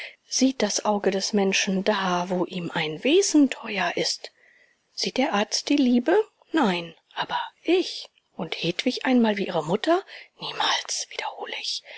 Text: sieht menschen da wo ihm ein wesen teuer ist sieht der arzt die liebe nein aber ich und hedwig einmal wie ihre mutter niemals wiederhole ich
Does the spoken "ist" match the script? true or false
true